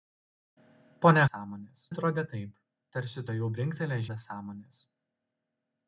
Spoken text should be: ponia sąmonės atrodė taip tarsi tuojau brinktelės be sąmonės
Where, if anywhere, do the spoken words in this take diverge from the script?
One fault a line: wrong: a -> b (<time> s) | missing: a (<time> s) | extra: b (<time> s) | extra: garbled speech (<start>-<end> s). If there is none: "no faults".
no faults